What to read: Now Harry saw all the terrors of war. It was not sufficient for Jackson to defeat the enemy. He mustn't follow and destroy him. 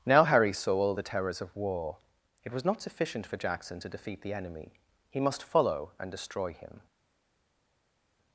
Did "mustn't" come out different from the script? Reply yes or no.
yes